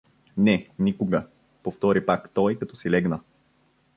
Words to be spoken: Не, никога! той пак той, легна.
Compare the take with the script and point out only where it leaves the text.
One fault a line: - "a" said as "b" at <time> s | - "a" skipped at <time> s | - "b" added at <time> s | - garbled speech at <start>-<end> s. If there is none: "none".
- "той" said as "повтори" at 1.6 s
- "като си" added at 2.6 s